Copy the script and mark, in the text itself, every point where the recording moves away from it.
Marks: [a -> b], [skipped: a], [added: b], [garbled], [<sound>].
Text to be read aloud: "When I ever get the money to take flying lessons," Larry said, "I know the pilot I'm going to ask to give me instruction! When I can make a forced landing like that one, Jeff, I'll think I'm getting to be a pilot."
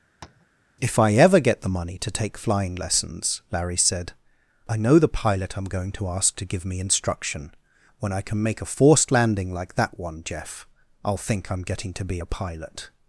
[tap] ["When -> If] I ever get the money to take flying lessons," Larry said, "I know the pilot I'm going to ask to give me instruction! When I can make a forced landing like that one, Jeff, I'll think I'm getting to be a pilot."